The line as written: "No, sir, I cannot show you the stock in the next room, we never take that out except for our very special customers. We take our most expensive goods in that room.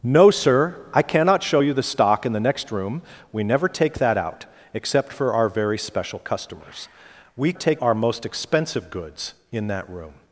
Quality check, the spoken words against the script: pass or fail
pass